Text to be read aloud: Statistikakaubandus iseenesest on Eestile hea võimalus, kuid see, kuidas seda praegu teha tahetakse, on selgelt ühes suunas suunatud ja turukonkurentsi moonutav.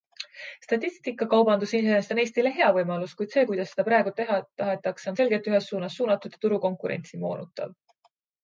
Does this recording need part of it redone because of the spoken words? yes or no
no